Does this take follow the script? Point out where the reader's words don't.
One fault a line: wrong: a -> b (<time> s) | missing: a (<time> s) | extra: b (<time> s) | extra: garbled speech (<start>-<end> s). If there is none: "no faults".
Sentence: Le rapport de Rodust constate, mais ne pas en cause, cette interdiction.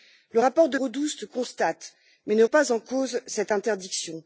no faults